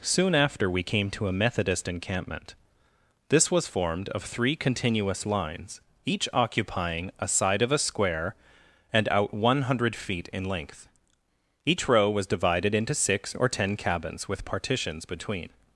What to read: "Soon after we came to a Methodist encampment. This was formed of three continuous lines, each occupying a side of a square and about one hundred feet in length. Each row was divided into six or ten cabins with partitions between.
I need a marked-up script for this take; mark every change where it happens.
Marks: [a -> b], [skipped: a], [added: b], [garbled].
"Soon after we came to a Methodist encampment. This was formed of three continuous lines, each occupying a side of a square and [about -> out] one hundred feet in length. Each row was divided into six or ten cabins with partitions between.